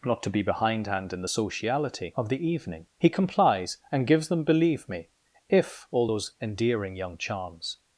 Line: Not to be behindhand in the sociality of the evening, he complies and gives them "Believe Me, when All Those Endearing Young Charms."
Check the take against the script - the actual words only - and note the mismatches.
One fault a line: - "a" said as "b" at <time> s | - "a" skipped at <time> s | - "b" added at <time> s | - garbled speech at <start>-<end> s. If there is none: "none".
- "when" said as "if" at 5.5 s